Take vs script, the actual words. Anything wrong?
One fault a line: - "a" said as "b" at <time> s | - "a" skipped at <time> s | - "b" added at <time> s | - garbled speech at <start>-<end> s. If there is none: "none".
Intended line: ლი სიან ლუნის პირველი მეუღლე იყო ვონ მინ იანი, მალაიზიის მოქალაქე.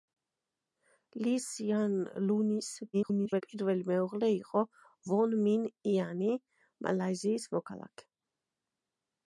- garbled speech at 2.9-3.4 s